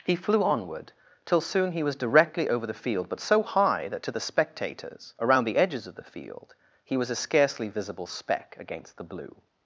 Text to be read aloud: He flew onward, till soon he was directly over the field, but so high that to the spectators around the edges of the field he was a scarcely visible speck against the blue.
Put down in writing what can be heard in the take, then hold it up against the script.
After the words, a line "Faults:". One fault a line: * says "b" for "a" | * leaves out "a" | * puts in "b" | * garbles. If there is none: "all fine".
He flew onward, till soon he was directly over the field, but so high that to the spectators around the edges of the field he was a scarcely visible speck against the blue.
Faults:
all fine